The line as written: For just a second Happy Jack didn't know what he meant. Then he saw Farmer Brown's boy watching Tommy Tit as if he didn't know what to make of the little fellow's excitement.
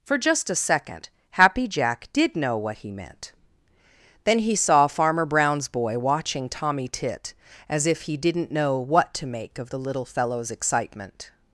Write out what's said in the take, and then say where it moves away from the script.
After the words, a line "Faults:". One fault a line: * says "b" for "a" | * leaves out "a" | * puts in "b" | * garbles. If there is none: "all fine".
For just a second Happy Jack did know what he meant. Then he saw Farmer Brown's boy watching Tommy Tit as if he didn't know what to make of the little fellow's excitement.
Faults:
* says "did" for "didn't"